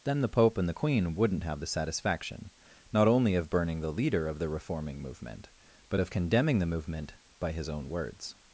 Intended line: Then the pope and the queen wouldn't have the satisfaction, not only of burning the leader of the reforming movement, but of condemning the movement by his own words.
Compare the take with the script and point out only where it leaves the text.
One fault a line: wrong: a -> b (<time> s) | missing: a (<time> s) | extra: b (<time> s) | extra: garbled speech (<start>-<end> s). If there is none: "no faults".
no faults